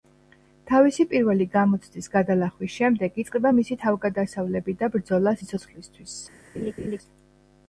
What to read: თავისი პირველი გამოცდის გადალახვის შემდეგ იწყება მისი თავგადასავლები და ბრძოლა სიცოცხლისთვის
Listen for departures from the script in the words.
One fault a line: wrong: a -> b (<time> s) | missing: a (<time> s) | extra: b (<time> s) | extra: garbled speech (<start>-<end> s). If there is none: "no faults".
no faults